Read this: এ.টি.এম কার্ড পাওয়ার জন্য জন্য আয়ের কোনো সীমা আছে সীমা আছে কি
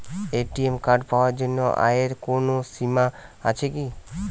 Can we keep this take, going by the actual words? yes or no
no